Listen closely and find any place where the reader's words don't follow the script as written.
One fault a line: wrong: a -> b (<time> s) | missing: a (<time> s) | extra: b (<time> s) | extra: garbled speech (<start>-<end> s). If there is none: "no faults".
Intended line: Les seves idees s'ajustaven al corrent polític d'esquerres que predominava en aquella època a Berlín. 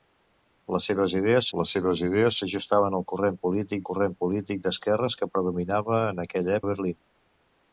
extra: les seves idees (1.6 s)
extra: corrent polític (3.9 s)
missing: època (6.6 s)